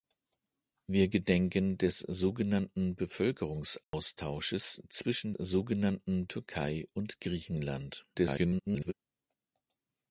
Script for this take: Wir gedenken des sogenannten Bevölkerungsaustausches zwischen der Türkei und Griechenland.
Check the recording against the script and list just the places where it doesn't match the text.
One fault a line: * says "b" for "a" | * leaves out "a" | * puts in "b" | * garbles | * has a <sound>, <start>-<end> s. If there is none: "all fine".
* has a dropout, 3.8-3.9 s
* says "sogenannten" for "der"
* garbles